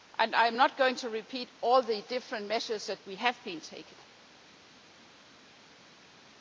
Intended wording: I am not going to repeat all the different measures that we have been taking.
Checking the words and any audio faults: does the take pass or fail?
pass